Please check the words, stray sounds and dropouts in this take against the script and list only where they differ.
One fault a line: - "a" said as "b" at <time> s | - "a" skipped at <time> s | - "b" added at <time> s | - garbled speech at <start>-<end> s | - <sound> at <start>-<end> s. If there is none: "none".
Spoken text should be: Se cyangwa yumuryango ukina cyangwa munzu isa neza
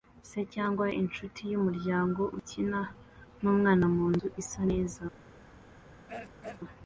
- "inshuti" added at 1.0 s
- "cyangwa" said as "numwana" at 3.4 s
- throat clearing at 6.1-6.6 s